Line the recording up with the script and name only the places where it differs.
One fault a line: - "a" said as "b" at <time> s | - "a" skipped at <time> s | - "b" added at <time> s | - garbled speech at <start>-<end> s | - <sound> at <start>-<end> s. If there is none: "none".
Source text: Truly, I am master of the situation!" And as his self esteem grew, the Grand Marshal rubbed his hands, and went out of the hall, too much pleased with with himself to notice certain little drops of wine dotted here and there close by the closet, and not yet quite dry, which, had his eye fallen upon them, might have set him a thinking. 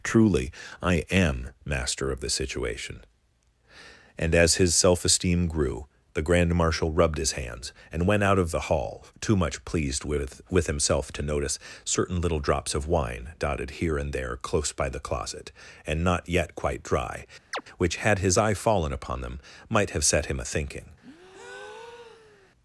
- chirp at 17.5-17.6 s
- breath at 21.0-22.5 s